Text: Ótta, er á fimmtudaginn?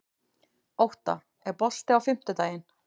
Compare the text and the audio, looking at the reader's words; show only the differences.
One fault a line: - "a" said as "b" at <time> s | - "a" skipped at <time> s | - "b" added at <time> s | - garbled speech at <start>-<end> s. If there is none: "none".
- "bolti" added at 1.6 s